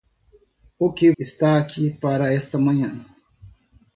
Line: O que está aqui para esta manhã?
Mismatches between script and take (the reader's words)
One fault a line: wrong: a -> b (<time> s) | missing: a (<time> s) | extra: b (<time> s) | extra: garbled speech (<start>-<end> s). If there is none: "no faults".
no faults